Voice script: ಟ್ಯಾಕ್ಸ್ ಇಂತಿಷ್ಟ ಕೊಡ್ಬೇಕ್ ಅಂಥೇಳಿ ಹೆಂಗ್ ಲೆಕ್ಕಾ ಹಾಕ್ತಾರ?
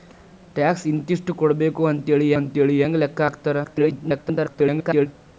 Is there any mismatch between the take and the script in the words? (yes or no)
yes